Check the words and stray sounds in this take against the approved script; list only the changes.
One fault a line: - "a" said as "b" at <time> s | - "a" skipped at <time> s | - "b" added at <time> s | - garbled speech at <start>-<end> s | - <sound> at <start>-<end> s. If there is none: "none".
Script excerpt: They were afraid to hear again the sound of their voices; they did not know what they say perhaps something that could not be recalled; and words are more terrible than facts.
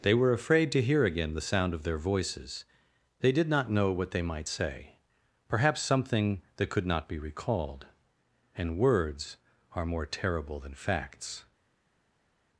- "might" added at 4.2 s